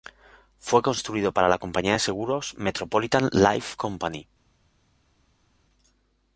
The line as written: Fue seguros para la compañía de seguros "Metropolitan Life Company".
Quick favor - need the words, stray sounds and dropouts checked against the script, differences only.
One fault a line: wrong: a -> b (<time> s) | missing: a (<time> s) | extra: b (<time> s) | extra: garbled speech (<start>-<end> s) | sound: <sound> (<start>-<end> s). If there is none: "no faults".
wrong: seguros -> construido (0.8 s)